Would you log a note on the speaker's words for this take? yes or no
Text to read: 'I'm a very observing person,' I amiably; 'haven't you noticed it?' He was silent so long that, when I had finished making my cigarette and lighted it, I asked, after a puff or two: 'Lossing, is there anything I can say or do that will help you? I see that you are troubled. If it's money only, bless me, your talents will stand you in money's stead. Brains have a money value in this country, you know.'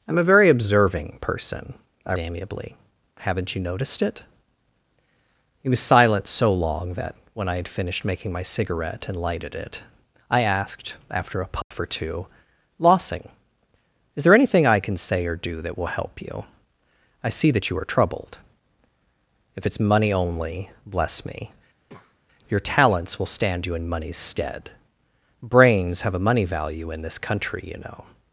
no